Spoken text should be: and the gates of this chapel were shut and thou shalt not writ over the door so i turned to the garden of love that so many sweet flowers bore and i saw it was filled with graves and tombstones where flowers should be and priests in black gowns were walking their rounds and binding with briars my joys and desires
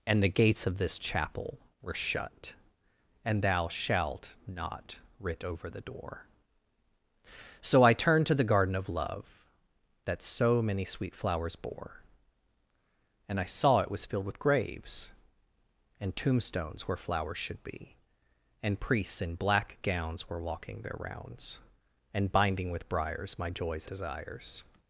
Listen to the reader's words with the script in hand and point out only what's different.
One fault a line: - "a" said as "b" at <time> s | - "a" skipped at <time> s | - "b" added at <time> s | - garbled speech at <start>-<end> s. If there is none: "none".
- "and" skipped at 23.9 s